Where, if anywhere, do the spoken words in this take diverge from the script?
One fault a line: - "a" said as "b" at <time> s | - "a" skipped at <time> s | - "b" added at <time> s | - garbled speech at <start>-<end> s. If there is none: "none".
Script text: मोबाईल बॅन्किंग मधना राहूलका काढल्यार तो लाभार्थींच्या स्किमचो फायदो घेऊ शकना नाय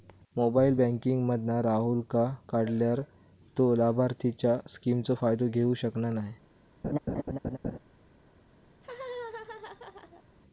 none